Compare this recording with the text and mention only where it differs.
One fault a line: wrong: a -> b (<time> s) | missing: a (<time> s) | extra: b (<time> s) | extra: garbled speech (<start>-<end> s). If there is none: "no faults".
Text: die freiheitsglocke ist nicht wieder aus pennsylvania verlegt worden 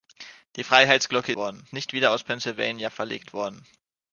wrong: ist -> worden (1.3 s)